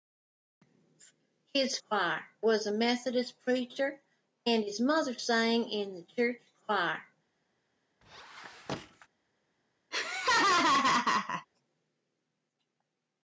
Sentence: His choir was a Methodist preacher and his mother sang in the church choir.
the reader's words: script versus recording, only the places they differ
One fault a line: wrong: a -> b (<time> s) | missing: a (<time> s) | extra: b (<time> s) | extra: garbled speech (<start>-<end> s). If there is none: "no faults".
no faults